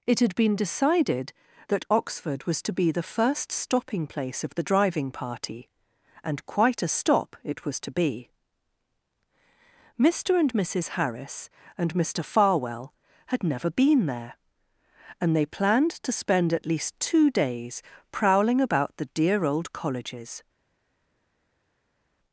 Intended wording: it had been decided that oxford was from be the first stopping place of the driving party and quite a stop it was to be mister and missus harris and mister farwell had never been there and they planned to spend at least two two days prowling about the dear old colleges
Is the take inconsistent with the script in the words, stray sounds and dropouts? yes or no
yes